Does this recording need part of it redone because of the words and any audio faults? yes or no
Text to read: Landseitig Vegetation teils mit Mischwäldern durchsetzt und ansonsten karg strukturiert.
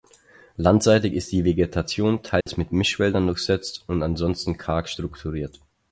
yes